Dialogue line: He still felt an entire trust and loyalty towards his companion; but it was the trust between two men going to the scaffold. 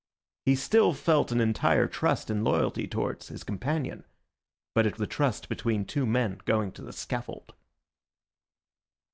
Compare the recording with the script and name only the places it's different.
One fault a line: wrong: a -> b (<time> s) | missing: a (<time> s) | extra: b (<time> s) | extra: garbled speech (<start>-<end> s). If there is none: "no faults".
missing: was (5.0 s)